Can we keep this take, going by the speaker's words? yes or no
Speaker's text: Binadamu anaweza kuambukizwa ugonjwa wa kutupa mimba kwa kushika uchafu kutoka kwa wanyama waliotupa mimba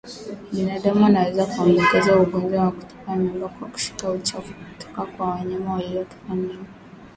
yes